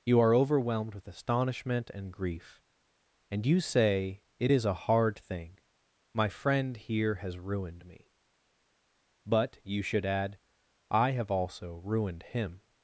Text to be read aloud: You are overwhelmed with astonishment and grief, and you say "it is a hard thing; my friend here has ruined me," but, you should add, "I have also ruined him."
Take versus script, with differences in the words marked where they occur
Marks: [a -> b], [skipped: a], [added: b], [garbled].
You are overwhelmed with astonishment and grief, and you say "it is a hard thing; my friend here has ruined me," but, you should add, "I have also ruined him."